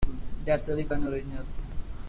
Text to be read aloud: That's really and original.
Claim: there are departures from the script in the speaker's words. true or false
false